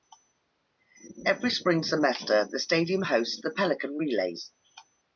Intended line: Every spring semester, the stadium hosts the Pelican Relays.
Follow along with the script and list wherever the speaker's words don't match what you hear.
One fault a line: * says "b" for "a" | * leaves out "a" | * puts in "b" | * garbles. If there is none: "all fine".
all fine